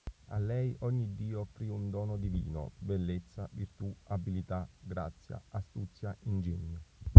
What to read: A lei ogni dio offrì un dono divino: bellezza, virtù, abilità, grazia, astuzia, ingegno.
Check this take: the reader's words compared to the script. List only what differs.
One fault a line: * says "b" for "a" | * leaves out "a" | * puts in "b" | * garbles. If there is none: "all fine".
all fine